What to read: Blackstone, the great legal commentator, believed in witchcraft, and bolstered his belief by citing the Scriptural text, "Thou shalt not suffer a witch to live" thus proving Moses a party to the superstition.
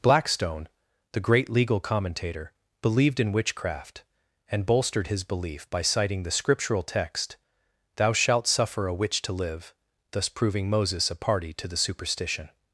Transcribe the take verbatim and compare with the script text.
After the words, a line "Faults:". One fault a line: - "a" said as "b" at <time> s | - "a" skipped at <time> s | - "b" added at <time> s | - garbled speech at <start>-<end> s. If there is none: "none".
Blackstone, the great legal commentator, believed in witchcraft, and bolstered his belief by citing the Scriptural text, "Thou shalt suffer a witch to live" thus proving Moses a party to the superstition.
Faults:
- "not" skipped at 8.5 s